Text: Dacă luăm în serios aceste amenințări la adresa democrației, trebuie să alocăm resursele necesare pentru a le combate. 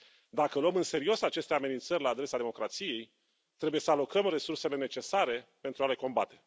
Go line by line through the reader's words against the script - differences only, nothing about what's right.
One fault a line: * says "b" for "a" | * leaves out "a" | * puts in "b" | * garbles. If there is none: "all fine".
all fine